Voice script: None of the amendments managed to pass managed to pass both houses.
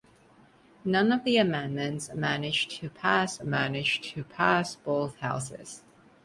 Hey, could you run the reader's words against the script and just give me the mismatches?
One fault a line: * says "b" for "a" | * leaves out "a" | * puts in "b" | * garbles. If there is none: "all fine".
all fine